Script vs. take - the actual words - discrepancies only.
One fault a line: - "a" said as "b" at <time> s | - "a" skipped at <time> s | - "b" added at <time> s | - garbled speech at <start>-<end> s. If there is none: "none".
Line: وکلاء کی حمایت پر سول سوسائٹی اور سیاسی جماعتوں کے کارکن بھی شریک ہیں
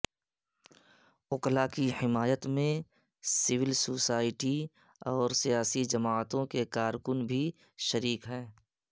- "پر" said as "میں" at 2.5 s